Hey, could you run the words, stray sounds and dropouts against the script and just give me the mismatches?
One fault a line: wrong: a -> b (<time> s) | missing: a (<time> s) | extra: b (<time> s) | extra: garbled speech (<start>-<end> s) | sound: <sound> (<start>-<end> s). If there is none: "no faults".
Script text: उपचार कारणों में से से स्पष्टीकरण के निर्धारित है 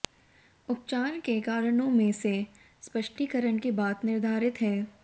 extra: के (1.2 s)
missing: से (2.3 s)
extra: बाद (3.7 s)